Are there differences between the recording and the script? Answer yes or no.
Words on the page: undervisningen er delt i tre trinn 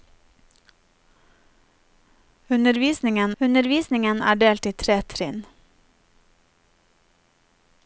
yes